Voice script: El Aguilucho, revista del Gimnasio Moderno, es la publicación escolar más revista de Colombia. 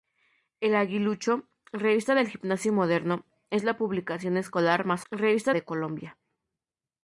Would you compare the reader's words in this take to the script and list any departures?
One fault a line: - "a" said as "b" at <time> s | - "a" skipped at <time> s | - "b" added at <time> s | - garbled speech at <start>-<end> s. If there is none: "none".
none